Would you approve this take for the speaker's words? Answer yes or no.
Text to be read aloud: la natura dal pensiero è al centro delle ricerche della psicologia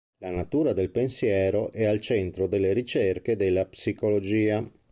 no